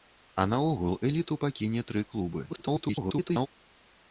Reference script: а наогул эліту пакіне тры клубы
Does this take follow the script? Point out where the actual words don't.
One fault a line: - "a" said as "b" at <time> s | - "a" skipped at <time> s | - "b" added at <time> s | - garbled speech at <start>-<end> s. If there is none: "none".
- garbled speech at 2.5-3.5 s